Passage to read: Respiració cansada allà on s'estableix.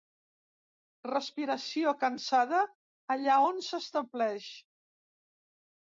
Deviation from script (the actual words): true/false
false